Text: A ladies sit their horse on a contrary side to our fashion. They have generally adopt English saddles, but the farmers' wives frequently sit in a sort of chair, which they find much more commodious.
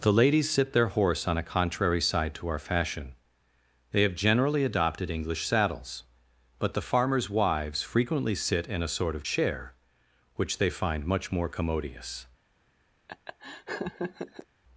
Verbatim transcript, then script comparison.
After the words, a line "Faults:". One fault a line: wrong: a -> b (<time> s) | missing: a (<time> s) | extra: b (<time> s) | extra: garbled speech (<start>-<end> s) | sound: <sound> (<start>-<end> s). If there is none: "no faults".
The ladies sit their horse on a contrary side to our fashion. They have generally adopted English saddles, but the farmers' wives frequently sit in a sort of chair, which they find much more commodious.
Faults:
wrong: A -> The (0.0 s)
wrong: adopt -> adopted (4.6 s)
sound: laugh (13.1-14.5 s)